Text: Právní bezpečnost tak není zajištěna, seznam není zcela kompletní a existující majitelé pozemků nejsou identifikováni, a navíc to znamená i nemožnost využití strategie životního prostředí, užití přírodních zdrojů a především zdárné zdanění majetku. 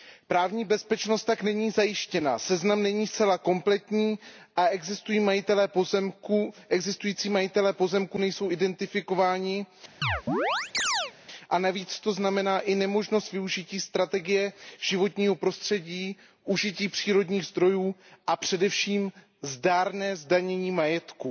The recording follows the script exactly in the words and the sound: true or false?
false